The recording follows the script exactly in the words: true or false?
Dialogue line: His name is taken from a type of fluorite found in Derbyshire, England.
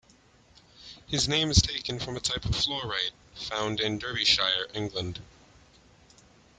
true